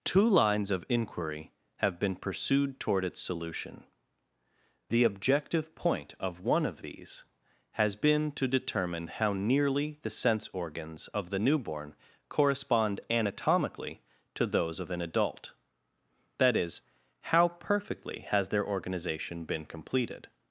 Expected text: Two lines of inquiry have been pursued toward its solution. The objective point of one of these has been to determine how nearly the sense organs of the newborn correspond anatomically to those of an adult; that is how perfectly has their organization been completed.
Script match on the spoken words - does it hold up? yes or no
yes